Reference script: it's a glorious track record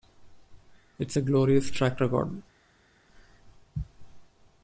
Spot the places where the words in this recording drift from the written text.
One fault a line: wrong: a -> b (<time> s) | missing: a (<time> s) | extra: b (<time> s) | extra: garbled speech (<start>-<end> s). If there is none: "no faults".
no faults